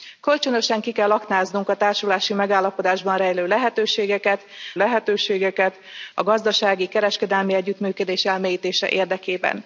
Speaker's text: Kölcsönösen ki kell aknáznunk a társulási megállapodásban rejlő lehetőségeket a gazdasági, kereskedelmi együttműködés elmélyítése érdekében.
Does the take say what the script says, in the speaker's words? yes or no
no